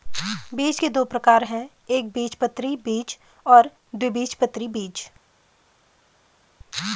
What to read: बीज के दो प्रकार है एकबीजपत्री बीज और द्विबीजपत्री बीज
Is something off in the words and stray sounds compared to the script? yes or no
no